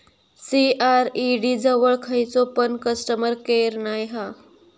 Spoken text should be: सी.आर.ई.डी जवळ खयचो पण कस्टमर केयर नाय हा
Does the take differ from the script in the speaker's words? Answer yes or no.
no